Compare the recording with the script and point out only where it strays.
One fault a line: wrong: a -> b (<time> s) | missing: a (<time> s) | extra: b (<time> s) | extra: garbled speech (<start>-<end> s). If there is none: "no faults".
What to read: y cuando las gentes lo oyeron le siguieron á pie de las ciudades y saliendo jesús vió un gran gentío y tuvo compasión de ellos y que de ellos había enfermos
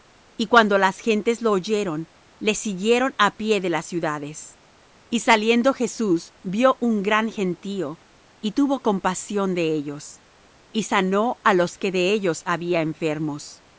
extra: sanó á los (10.8 s)